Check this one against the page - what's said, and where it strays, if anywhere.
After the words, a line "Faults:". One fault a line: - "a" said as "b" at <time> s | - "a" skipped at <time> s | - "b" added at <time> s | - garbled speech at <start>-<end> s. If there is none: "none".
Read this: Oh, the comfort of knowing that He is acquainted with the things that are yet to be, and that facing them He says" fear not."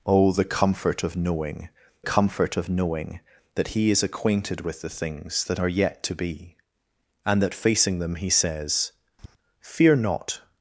Oh, the comfort of knowing comfort of knowing that He is acquainted with the things that are yet to be, and that facing them He says" fear not."
Faults:
- "comfort of knowing" added at 2.0 s